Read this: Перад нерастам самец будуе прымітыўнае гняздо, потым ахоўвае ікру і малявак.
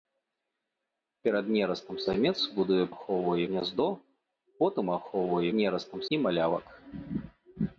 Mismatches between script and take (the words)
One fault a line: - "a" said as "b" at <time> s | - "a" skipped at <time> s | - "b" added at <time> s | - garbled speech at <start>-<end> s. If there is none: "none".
- "прымітыўнае" said as "ахоўвае" at 2.9 s
- "ікру" said as "нерастам" at 5.6 s